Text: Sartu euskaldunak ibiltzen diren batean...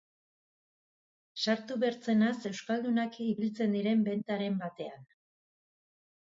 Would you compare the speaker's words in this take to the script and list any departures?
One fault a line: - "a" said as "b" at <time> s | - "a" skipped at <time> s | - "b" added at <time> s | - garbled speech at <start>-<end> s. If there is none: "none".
- "bertzenaz" added at 1.8 s
- "bentaren" added at 4.1 s